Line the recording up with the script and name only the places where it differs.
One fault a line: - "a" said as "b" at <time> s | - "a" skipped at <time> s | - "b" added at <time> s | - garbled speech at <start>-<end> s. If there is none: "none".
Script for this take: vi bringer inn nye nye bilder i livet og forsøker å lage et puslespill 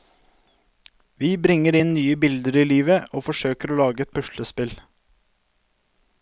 - "nye" skipped at 2.1 s